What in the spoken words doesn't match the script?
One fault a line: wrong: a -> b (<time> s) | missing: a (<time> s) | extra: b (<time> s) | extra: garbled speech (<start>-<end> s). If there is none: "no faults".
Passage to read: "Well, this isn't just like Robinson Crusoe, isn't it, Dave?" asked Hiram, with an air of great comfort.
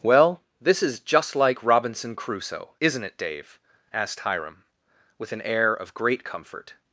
wrong: isn't -> is (0.8 s)